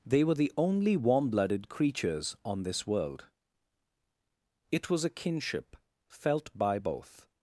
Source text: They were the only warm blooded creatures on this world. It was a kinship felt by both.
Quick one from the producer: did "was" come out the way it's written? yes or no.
yes